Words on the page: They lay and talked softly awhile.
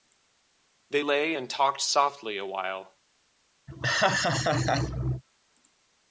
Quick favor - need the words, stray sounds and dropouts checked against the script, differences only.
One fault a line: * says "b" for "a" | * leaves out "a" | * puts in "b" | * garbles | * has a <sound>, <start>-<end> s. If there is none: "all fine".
* has a laugh, 3.7-5.2 s